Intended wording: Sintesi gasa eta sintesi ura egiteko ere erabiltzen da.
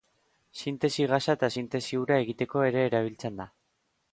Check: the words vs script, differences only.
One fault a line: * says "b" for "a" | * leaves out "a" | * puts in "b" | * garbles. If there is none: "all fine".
all fine